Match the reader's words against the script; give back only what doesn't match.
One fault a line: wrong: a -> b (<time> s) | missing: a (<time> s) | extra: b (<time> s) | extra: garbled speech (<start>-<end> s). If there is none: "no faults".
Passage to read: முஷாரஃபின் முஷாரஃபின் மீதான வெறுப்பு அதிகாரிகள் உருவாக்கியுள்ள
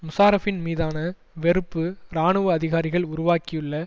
missing: முஷாரஃபின் (0.6 s)
extra: இராணுவ (2.1 s)